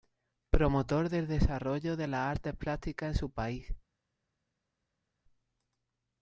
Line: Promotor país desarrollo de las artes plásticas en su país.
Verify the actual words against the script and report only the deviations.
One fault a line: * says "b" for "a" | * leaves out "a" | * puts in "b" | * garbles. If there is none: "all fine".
* says "del" for "país"